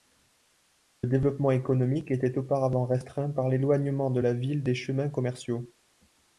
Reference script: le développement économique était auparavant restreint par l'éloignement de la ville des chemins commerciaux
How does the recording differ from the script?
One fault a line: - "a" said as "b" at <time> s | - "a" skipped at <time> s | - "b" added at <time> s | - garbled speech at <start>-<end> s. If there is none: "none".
none